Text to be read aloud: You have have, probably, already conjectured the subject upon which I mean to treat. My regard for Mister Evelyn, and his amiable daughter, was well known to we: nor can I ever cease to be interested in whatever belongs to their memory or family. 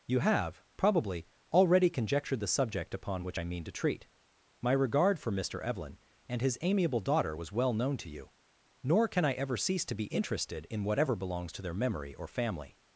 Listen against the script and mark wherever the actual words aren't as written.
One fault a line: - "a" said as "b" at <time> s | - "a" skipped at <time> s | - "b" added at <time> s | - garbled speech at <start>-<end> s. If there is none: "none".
- "have" skipped at 0.6 s
- "we" said as "you" at 8.1 s